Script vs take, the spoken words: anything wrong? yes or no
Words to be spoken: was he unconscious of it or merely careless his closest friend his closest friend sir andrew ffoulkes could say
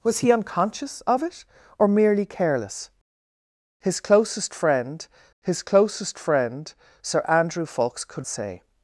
no